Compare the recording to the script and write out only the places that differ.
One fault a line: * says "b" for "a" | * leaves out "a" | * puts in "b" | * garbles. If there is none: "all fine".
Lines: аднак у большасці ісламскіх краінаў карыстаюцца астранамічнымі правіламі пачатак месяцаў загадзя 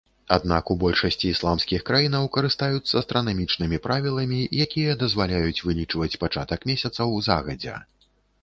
* puts in "якія дазваляюць вылічваць"